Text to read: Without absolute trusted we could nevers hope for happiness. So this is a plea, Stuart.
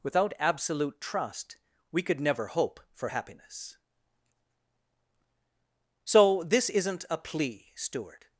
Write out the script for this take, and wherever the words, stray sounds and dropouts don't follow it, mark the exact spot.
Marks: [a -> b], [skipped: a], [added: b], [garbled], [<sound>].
Without absolute [trusted -> trust] we could [nevers -> never] hope for happiness. So this [is -> isn't] a plea, Stuart.